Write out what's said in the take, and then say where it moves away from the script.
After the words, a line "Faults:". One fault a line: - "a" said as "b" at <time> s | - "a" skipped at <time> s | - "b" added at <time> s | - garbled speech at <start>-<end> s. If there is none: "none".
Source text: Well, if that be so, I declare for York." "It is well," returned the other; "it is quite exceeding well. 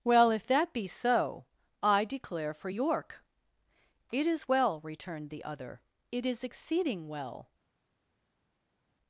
Well, if that be so, I declare for York." "It is well," returned the other; "it is exceeding well.
Faults:
- "quite" skipped at 6.4 s